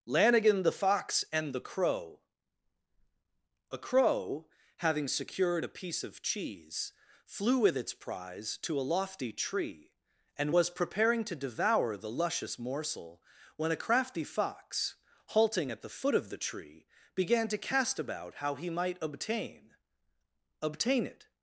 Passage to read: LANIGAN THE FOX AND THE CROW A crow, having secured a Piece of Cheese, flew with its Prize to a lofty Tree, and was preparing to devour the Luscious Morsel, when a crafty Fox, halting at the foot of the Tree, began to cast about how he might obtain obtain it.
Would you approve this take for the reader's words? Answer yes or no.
yes